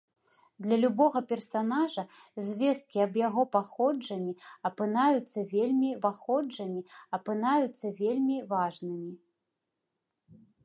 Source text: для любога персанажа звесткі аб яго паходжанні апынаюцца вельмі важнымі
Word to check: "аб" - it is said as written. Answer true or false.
true